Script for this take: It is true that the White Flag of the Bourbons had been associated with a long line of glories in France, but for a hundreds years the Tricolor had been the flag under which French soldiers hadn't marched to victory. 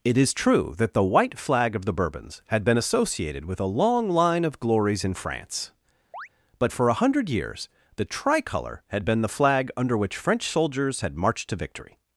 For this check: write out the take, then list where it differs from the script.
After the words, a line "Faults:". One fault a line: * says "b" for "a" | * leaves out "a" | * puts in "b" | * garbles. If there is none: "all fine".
It is true that the White Flag of the Bourbons had been associated with a long line of glories in France, but for a hundred years the Tricolor had been the flag under which French soldiers had marched to victory.
Faults:
* says "hundred" for "hundreds"
* says "had" for "hadn't"